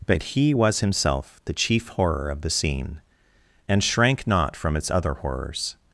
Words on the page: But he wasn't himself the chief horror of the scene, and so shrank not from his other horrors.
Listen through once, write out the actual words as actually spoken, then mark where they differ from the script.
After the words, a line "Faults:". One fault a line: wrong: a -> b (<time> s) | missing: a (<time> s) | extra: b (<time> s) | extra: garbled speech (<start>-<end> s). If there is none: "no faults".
But he was himself the chief horror of the scene, and shrank not from its other horrors.
Faults:
wrong: wasn't -> was (0.5 s)
missing: so (3.8 s)
wrong: his -> its (4.8 s)